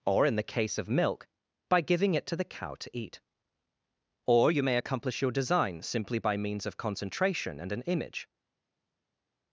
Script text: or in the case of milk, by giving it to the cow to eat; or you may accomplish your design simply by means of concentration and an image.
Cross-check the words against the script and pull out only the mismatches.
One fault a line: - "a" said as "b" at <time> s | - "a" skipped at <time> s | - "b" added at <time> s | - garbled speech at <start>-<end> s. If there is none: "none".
none